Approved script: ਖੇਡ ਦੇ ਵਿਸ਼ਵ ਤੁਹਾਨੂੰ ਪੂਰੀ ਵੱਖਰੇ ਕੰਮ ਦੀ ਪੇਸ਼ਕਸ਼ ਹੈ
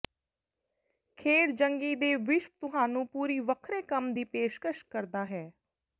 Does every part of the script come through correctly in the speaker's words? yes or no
no